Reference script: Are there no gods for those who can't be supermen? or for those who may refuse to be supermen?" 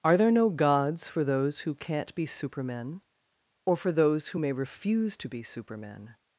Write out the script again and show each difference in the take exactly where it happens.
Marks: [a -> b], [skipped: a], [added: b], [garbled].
Are there no gods for those who can't be supermen? or for those who may refuse to be supermen?"